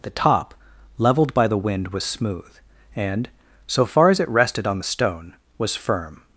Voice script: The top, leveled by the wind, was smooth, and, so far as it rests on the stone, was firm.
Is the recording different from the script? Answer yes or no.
yes